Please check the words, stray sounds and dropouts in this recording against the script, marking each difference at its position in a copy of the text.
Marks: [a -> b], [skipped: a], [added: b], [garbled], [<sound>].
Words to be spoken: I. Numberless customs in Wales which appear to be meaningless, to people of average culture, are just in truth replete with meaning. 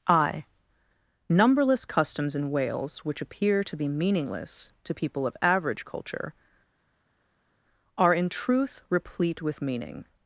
I. Numberless customs in Wales which appear to be meaningless, to people of average culture, are [skipped: just] in truth replete with meaning.